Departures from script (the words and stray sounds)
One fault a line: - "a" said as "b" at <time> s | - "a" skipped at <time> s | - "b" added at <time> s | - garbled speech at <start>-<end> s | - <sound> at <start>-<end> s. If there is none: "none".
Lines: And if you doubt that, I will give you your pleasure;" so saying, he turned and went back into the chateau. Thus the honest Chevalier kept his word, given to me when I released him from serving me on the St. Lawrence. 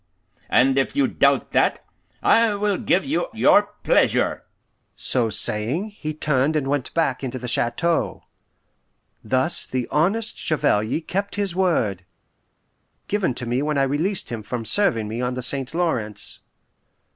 none